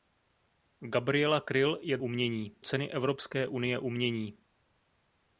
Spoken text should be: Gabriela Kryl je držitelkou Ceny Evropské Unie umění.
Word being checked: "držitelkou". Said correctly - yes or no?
no